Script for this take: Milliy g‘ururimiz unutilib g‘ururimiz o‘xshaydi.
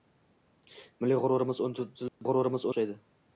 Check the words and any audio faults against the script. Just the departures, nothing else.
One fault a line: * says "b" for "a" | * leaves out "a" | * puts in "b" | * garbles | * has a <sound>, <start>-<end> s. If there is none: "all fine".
* has a dropout, 2.1-2.2 s